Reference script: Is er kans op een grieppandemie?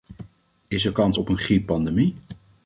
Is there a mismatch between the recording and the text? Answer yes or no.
no